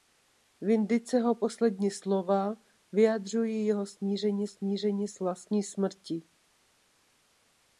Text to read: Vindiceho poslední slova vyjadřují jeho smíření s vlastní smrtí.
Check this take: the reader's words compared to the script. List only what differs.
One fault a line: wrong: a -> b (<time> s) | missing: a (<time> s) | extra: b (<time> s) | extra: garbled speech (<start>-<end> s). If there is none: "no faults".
extra: smíření (4.5 s)